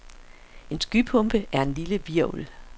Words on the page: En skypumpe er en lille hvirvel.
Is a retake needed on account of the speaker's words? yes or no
no